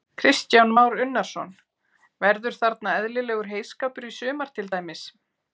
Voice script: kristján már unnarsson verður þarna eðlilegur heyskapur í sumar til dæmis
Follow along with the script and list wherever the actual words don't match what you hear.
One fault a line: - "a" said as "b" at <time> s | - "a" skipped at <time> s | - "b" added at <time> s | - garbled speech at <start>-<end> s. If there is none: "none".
none